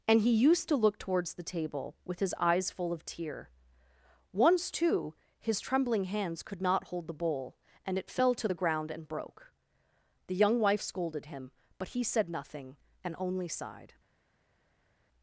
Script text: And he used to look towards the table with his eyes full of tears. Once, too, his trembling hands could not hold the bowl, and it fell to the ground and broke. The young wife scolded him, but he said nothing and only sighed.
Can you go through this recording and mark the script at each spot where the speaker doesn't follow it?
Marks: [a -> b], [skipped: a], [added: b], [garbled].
And he used to look towards the table with his eyes full of [tears. -> tear] Once, too, his trembling hands could not hold the bowl, and it fell to the ground and broke. The young wife scolded him, but he said nothing and only sighed.